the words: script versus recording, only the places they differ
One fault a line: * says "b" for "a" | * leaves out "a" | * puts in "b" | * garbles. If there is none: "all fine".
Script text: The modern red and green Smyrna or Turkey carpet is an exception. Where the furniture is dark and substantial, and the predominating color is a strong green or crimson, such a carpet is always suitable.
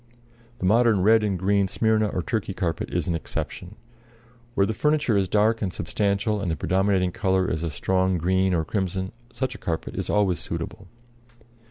all fine